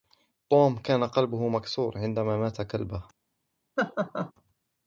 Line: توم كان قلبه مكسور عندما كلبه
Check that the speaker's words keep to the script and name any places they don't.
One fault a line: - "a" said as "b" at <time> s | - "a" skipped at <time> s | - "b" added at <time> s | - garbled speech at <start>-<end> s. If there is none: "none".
- "مات" added at 2.4 s